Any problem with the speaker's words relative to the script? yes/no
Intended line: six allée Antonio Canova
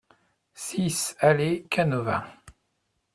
yes